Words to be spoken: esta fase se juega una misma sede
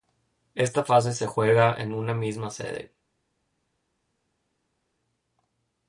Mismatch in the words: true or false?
true